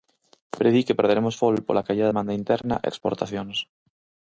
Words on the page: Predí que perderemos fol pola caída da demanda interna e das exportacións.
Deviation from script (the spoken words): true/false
true